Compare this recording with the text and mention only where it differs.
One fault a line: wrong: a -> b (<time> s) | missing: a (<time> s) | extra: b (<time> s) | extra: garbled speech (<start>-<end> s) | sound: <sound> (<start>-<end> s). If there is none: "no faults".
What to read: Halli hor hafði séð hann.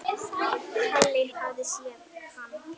missing: hor (1.2 s)